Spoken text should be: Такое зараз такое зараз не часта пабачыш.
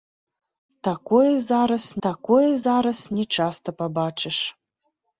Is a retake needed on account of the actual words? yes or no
no